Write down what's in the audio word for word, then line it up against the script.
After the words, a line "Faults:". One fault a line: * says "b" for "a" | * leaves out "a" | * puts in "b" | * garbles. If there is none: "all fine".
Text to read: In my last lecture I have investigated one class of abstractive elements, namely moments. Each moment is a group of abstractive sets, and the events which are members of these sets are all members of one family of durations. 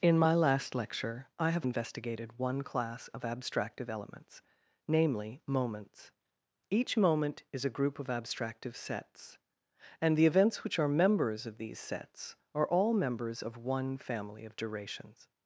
In my last lecture I have investigated one class of abstractive elements, namely moments. Each moment is a group of abstractive sets, and the events which are members of these sets are all members of one family of durations.
Faults:
all fine